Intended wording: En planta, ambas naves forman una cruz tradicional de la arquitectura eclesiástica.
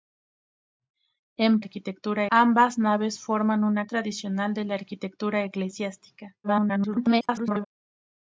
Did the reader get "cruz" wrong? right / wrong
wrong